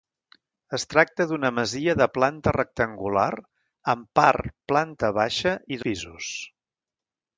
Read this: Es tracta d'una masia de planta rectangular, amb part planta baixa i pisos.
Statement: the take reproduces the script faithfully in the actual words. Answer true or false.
true